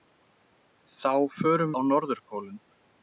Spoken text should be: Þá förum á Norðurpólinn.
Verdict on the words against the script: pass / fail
pass